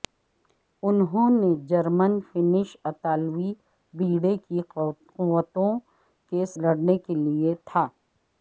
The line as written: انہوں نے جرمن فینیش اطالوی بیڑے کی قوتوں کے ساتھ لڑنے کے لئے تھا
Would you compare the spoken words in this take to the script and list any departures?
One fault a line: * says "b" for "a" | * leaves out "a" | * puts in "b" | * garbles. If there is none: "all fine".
* leaves out "ساتھ"